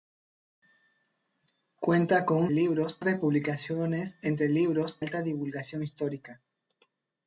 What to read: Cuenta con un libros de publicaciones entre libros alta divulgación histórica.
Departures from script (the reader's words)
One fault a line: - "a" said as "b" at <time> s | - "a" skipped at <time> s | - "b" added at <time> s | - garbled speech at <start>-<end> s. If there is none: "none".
none